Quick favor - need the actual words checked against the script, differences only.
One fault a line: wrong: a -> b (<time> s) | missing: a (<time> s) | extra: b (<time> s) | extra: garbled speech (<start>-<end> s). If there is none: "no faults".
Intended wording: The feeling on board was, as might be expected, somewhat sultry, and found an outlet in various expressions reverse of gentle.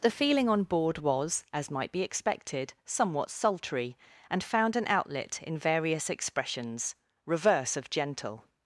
no faults